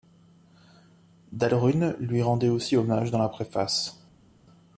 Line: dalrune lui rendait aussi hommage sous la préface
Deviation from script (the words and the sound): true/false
true